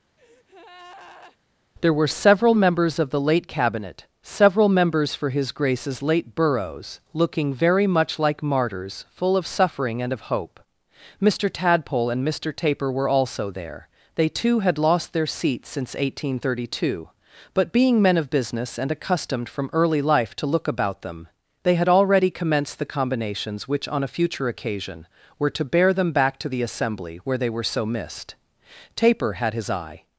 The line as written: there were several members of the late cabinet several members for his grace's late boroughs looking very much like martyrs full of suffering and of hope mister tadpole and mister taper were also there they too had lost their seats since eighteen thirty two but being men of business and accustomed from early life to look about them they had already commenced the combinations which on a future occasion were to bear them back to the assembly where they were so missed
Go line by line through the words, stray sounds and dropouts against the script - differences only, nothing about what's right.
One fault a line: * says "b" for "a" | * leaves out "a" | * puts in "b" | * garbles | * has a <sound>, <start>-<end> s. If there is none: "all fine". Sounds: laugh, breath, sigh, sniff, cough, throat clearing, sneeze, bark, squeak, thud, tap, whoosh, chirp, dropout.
* has a breath, 0.2-1.4 s
* puts in "taper had his eye"